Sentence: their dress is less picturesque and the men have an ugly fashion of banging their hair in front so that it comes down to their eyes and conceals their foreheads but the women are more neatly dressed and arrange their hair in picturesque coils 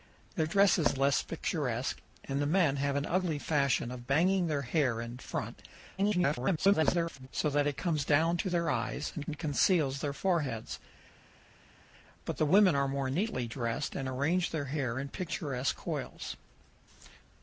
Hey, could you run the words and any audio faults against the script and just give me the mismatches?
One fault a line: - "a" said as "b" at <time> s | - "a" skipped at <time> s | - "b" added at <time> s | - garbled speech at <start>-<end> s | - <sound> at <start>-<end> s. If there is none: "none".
- garbled speech at 6.0-7.3 s
- "and" added at 9.3 s